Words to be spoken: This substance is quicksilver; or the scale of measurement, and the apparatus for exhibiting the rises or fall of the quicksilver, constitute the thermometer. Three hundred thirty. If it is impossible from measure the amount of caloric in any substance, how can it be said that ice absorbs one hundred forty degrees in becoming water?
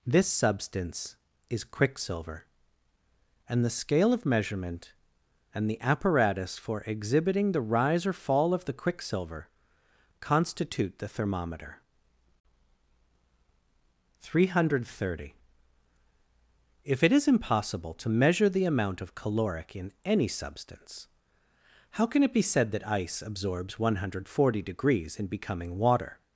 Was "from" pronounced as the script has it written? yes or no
no